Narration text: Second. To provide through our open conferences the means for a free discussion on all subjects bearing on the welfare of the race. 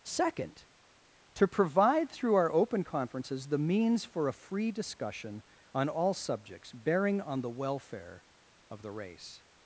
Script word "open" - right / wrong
right